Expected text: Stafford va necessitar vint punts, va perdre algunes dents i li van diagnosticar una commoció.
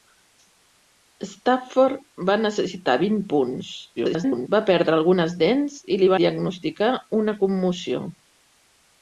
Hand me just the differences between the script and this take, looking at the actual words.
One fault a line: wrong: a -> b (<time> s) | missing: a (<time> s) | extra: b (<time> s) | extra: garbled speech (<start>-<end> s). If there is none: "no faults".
extra: garbled speech (4.0-4.5 s)
missing: van (6.1 s)